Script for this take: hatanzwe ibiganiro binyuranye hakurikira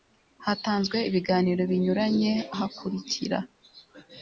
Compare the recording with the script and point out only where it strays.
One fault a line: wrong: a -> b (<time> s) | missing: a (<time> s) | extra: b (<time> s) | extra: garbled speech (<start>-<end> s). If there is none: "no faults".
no faults